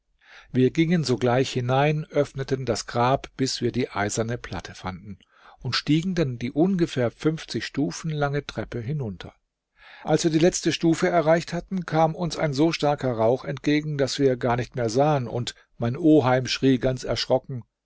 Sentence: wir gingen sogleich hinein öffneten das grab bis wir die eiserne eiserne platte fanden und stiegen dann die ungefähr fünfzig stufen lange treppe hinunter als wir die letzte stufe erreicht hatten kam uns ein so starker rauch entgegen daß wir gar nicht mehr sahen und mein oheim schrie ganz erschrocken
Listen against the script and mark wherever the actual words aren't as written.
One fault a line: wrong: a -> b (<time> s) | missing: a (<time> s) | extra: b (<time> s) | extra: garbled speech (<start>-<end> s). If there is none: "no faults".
missing: eiserne (4.4 s)